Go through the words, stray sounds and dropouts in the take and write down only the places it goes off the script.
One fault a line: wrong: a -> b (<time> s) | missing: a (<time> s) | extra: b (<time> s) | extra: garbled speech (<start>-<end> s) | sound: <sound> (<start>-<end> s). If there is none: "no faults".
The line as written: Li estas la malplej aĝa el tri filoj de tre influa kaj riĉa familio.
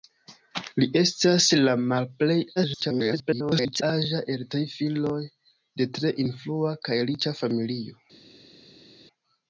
extra: garbled speech (2.6-3.8 s)